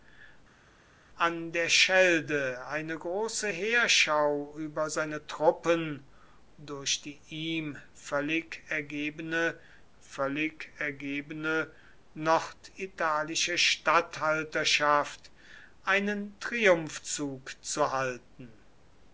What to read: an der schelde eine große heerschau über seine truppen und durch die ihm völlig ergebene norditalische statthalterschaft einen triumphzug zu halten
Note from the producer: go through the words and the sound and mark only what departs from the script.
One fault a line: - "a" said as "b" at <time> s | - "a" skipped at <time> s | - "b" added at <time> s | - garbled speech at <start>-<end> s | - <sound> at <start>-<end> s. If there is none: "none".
- "und" skipped at 6.1 s
- "völlig ergebene" added at 10.0 s